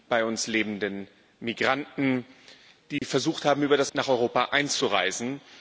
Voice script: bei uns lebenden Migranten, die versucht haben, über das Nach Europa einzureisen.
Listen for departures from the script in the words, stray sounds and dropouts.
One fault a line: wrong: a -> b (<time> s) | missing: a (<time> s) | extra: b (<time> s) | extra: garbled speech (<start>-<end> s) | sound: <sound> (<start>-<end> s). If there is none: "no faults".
sound: dropout (3.0-3.0 s)